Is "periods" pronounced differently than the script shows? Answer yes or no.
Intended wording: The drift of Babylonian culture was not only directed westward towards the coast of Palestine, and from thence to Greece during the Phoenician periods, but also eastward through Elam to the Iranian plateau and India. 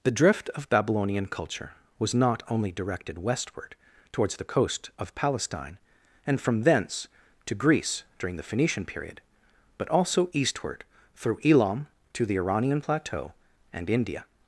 yes